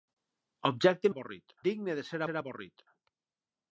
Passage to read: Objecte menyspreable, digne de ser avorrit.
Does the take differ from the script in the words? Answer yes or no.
yes